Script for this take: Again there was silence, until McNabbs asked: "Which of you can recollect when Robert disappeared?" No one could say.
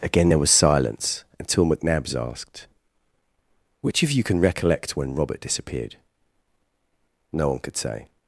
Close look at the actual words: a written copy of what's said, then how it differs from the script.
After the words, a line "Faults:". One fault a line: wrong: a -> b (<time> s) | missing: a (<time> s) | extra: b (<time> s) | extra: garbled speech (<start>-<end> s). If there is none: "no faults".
Again there was silence, until McNabbs asked: "Which of you can recollect when Robert disappeared?" No one could say.
Faults:
no faults